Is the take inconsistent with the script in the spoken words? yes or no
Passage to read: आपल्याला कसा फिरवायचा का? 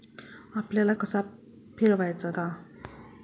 no